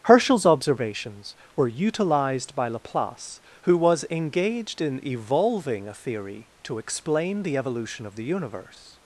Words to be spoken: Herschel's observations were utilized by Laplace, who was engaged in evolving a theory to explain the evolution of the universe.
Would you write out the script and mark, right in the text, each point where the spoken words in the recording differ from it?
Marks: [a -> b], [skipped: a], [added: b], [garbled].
Herschel's observations were utilized by Laplace, who was engaged in evolving a theory to explain the evolution of the universe.